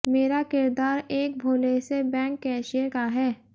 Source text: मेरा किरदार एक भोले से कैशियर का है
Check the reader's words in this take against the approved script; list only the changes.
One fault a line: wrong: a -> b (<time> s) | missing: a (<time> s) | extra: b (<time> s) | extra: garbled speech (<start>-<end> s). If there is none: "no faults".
extra: बैंक (2.0 s)